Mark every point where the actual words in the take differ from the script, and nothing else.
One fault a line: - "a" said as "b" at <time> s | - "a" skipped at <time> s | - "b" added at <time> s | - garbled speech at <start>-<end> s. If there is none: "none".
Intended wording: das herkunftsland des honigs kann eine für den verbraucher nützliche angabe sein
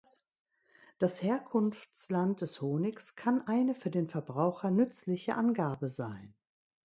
none